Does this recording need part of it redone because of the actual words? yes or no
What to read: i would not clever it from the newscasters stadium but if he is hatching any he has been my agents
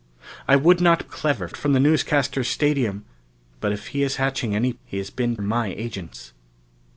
no